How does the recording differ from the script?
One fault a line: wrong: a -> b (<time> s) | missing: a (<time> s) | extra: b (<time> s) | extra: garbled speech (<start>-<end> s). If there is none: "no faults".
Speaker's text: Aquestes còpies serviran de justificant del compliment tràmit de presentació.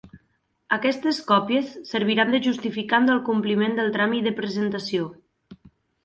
extra: del (3.8 s)